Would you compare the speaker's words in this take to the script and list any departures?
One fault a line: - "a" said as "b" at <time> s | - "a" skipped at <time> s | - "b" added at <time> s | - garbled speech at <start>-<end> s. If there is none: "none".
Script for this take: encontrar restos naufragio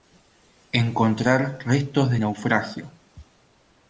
- "de" added at 2.1 s